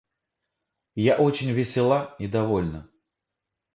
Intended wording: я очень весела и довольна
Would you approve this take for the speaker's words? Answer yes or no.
yes